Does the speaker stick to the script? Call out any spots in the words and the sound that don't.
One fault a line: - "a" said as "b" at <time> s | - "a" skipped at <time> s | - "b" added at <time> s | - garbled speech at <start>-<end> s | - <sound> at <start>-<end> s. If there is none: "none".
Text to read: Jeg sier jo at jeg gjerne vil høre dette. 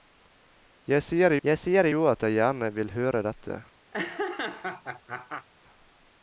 - "jeg sier" added at 1.5 s
- laugh at 3.9-5.5 s